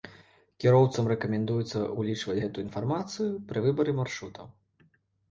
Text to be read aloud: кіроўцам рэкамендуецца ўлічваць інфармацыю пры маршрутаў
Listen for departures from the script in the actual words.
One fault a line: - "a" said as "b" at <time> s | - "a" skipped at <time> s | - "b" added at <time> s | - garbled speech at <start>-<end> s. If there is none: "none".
- "гэтую" added at 2.4 s
- "выбары" added at 3.7 s